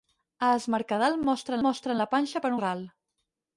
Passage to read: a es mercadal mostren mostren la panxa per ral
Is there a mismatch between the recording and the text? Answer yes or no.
no